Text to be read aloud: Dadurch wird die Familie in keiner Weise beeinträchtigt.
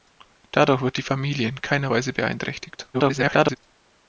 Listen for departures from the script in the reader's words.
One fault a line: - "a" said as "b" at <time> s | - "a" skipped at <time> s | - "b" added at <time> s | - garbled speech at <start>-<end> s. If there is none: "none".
- garbled speech at 2.9-3.6 s